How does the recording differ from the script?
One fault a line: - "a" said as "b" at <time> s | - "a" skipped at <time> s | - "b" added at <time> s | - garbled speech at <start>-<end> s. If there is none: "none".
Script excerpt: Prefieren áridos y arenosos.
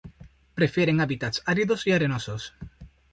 - "hábitats" added at 1.0 s